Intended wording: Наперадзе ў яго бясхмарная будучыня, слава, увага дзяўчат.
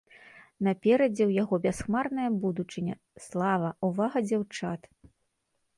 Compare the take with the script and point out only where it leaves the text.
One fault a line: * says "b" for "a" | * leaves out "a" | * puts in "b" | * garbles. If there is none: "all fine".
all fine